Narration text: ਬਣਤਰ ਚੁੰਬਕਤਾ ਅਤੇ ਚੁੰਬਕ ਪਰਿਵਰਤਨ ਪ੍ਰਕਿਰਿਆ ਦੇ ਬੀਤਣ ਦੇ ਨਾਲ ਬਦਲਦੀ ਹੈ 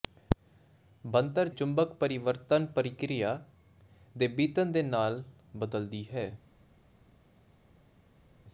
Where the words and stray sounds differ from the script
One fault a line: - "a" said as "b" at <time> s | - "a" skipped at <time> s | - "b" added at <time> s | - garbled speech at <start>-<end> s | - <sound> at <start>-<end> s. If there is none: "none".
- "ਚੁੰਬਕਤਾ ਅਤੇ" skipped at 1.5 s